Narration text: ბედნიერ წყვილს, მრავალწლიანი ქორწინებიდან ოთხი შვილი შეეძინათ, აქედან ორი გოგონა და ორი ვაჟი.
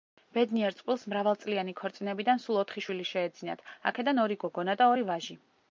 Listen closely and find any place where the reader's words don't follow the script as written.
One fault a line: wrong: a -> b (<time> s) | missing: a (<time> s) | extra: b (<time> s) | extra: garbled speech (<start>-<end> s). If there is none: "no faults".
extra: სულ (2.5 s)